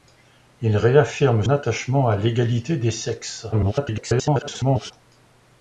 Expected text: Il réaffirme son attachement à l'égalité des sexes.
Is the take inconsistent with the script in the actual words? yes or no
yes